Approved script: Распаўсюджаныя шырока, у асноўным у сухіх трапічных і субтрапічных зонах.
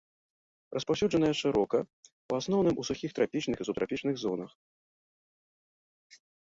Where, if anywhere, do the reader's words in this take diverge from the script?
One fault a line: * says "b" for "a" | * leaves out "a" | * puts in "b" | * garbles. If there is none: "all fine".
all fine